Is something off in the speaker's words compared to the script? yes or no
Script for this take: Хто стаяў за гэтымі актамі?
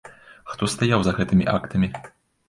no